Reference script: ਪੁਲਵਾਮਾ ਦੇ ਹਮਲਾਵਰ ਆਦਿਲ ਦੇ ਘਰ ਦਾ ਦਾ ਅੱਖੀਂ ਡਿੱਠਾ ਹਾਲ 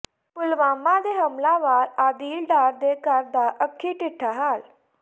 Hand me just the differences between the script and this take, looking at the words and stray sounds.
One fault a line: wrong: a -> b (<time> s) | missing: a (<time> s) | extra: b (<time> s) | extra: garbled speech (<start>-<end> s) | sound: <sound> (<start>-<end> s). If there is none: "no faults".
extra: ਡਾਰ (2.5 s)
missing: ਦਾ (3.5 s)